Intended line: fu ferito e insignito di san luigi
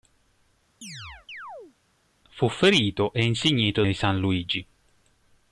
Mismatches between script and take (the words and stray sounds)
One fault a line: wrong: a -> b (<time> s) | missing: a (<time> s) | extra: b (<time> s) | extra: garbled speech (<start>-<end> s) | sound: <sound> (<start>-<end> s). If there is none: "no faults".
sound: chirp (0.8-1.8 s)